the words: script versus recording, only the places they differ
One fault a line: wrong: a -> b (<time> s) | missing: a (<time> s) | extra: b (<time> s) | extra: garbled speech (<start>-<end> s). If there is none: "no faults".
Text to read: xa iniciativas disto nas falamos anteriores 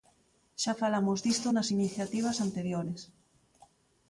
wrong: iniciativas -> falamos (0.8 s)
wrong: falamos -> iniciativas (1.8 s)